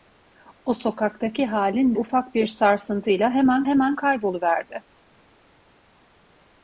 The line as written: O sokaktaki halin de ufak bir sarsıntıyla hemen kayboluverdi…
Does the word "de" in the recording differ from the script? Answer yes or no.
yes